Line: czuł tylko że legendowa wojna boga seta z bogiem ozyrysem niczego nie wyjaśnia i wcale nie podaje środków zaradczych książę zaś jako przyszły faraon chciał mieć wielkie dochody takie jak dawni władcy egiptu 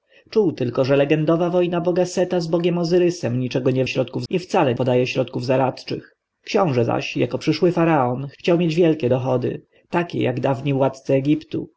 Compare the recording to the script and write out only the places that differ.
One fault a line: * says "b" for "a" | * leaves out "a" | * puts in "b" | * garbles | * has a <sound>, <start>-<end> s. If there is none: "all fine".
* says "środków" for "wyjaśnia"
* leaves out "nie"